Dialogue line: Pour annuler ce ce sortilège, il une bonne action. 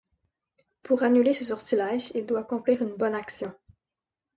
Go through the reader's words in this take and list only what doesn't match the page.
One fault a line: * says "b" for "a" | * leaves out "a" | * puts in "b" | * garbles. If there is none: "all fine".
* leaves out "ce"
* puts in "doit accomplir"